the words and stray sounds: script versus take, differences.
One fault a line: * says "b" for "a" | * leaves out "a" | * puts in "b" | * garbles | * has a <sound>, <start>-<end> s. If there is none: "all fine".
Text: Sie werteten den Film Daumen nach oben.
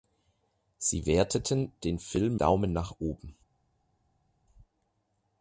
all fine